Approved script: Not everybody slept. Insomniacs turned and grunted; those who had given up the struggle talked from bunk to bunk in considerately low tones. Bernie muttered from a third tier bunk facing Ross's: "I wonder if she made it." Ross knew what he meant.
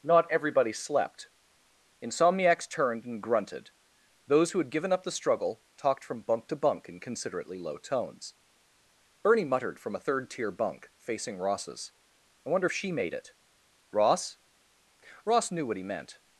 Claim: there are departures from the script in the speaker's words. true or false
true